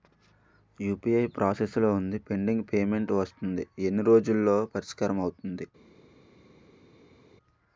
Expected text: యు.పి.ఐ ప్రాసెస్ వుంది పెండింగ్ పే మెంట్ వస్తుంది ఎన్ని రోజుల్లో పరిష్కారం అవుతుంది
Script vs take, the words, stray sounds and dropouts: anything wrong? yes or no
yes